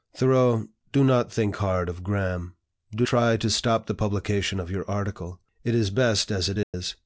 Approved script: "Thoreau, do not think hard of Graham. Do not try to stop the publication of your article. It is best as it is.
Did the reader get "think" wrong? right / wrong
right